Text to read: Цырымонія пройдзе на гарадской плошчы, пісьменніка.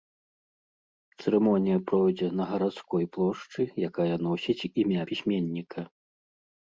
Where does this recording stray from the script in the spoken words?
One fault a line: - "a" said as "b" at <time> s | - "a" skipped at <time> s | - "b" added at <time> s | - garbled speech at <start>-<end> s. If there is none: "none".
- "якая носіць імя" added at 3.9 s